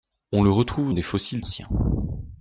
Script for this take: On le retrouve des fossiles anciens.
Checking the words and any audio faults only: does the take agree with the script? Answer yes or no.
yes